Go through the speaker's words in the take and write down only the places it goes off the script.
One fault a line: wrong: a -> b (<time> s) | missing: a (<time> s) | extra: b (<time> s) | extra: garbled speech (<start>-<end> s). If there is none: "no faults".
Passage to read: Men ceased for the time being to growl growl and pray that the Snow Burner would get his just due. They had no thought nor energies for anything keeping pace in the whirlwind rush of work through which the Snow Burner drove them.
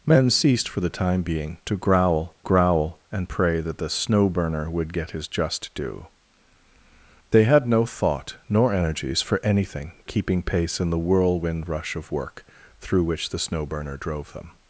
no faults